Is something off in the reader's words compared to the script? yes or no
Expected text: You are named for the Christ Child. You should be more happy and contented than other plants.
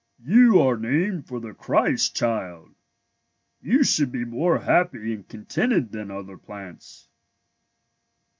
no